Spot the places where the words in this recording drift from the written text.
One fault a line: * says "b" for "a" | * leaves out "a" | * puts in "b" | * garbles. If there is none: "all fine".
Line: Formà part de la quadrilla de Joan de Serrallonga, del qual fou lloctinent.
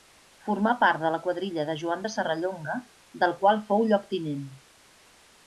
all fine